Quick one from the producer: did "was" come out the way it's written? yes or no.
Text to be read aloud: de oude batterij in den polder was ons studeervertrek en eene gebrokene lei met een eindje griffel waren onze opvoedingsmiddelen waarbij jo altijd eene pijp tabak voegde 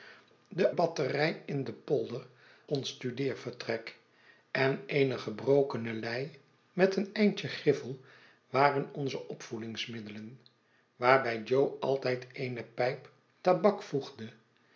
no